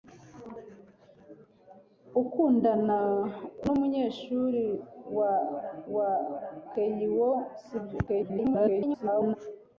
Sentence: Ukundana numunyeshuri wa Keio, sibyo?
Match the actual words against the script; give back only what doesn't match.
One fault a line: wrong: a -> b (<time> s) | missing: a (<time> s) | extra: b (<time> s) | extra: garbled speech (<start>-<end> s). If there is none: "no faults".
extra: wa (6.0 s)
extra: garbled speech (8.1-9.4 s)